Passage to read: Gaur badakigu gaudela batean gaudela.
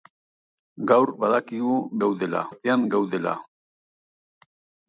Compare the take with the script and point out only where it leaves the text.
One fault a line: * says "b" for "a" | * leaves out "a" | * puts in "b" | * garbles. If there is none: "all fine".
all fine